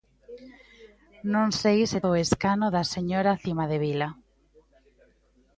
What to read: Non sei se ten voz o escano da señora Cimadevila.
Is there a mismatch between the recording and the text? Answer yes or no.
yes